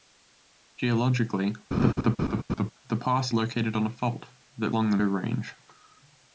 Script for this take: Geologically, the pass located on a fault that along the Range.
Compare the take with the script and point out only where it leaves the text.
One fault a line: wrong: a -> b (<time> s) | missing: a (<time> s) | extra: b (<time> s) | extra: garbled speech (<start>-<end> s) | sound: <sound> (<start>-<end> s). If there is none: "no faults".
sound: laugh (1.7-2.7 s)